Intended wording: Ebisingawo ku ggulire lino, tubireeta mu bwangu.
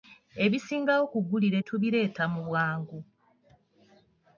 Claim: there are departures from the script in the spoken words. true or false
true